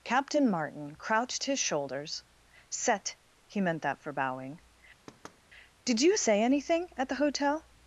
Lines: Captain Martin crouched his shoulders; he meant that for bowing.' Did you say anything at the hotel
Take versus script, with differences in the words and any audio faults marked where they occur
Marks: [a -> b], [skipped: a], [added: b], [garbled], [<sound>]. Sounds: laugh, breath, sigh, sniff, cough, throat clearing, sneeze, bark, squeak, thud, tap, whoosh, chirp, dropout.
Captain Martin crouched his shoulders; [added: set] he meant that for bowing.' [thud] Did you say anything at the hotel